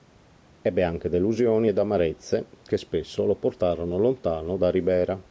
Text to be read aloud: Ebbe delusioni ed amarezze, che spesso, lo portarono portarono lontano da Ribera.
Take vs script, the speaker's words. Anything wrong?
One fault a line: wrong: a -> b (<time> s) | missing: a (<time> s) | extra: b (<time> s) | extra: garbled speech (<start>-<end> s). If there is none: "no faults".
extra: anche (0.8 s)
missing: portarono (4.0 s)